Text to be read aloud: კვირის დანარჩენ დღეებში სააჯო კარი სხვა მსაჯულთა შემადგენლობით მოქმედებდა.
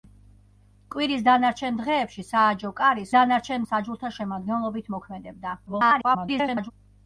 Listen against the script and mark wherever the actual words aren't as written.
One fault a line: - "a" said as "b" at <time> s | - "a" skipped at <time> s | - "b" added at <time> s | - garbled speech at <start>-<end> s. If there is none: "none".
- "სხვა" said as "დანარჩენ" at 3.1 s
- garbled speech at 5.7-6.7 s